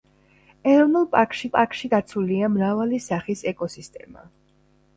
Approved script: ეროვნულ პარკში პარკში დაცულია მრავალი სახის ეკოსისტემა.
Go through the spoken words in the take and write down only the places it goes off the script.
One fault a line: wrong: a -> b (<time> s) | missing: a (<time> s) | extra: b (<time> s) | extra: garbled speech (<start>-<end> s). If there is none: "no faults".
no faults